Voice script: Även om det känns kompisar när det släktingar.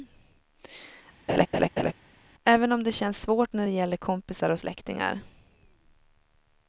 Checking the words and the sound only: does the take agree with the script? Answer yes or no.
no